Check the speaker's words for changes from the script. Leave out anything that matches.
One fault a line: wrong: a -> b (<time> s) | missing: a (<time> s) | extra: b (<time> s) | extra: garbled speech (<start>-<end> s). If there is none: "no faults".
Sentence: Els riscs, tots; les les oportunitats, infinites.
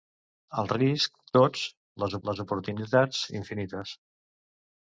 no faults